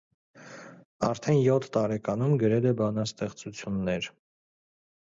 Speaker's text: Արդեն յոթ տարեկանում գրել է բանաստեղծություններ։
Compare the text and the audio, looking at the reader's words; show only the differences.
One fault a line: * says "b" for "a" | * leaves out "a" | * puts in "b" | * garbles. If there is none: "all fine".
all fine